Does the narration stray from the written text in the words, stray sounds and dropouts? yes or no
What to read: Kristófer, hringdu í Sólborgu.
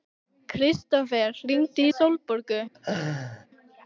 yes